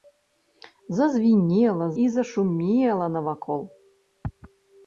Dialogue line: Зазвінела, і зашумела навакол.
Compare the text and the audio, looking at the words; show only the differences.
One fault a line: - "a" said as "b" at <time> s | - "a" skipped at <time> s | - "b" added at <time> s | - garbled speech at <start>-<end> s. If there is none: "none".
none